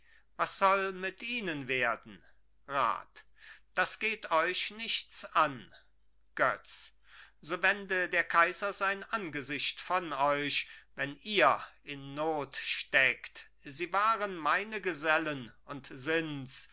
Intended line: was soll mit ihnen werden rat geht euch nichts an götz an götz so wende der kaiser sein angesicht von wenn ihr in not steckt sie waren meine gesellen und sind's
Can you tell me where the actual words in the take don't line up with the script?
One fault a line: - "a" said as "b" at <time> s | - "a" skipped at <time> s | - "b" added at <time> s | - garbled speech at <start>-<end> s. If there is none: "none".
- "das" added at 3.8 s
- "an götz" skipped at 6.9 s
- "euch" added at 10.1 s